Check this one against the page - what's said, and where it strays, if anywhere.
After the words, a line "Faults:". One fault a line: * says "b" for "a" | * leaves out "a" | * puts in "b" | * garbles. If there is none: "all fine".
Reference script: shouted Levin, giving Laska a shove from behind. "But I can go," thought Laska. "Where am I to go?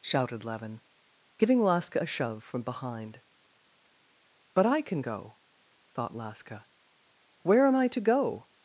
shouted Levin, giving Laska a shove from behind. "But I can go," thought Laska. "Where am I to go?
Faults:
all fine